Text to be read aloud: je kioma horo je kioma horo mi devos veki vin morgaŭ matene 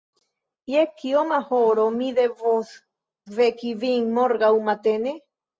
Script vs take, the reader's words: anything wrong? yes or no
yes